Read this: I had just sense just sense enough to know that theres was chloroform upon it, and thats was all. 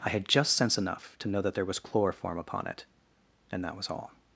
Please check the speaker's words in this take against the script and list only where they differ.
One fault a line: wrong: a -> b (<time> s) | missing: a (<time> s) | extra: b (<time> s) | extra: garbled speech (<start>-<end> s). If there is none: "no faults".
missing: just sense (0.8 s)
wrong: theres -> there (1.5 s)
wrong: thats -> that (3.6 s)